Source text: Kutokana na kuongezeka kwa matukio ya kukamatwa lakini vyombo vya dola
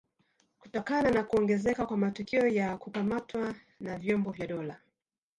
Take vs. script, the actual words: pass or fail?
fail